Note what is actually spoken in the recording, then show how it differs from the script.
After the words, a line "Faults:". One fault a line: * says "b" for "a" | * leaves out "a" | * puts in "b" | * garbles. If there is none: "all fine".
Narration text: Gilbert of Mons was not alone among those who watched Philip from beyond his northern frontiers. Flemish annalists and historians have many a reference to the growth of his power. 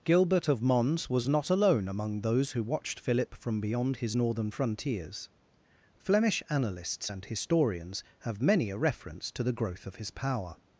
Gilbert of Mons was not alone among those who watched Philip from beyond his northern frontiers. Flemish annalists and historians have many a reference to the growth of his power.
Faults:
all fine